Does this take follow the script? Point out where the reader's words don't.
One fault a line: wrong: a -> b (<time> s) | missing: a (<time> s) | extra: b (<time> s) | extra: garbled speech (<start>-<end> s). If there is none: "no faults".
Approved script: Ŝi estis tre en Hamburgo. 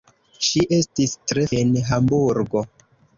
no faults